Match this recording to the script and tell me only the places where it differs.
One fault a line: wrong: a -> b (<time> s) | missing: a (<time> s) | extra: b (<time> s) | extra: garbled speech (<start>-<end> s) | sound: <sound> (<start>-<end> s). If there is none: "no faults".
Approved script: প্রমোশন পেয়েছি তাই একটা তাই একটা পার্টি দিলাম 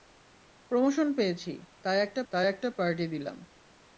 no faults